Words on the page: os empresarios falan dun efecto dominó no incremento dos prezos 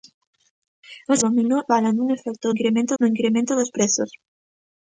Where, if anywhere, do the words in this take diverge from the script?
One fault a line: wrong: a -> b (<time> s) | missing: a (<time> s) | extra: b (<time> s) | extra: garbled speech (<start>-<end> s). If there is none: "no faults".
wrong: empresarios -> dominó (1.3 s)
wrong: dominó -> incremento (2.5 s)